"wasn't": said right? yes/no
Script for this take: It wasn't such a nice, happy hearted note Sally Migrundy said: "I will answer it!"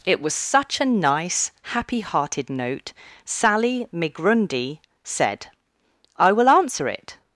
no